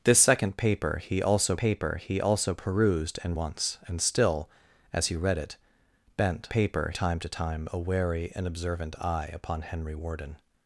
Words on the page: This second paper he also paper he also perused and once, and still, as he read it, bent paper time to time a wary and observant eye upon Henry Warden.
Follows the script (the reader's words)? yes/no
yes